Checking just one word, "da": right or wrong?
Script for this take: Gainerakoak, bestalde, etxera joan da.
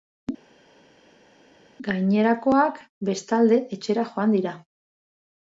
wrong